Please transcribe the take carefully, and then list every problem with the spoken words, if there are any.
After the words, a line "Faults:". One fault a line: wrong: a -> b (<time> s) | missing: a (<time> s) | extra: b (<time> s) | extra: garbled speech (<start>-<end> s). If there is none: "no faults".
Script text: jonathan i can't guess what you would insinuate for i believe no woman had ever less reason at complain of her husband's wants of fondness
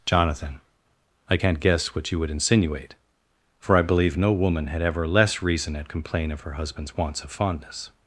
jonathan i can't guess what you would insinuate for i believe no woman had ever less reason at complain of her husband's wants of fondness
Faults:
no faults